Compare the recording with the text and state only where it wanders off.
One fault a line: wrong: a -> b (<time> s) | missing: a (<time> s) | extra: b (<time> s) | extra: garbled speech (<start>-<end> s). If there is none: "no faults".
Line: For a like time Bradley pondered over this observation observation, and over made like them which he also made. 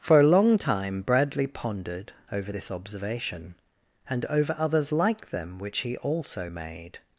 wrong: like -> long (0.3 s)
missing: observation (3.6 s)
wrong: made -> others (4.6 s)